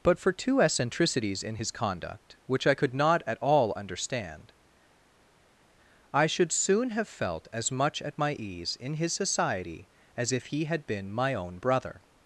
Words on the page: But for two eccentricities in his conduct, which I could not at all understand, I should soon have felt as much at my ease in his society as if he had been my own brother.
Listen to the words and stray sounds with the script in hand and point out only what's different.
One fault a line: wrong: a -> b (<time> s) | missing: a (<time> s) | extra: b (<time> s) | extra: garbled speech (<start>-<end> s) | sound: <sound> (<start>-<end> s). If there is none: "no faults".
no faults